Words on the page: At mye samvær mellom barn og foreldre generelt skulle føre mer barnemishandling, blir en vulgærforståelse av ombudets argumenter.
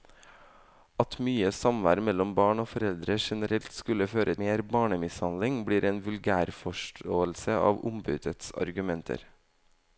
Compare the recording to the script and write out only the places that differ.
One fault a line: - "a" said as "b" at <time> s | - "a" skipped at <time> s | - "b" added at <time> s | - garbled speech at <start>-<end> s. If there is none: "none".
none